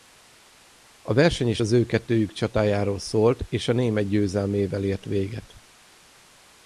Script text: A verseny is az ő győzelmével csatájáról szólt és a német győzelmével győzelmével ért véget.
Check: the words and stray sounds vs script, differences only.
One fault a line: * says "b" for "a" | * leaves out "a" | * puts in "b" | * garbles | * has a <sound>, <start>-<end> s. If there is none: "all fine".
* says "kettőjük" for "győzelmével"
* leaves out "győzelmével"